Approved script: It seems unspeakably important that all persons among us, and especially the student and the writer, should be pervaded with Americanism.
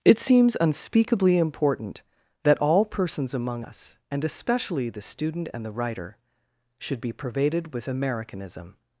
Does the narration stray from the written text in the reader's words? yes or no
no